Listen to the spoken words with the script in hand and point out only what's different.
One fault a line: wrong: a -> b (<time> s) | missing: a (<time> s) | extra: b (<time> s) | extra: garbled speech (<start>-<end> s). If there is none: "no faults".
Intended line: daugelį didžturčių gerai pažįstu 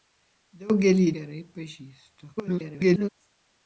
missing: didžturčių (1.0 s)
extra: garbled speech (2.4-3.1 s)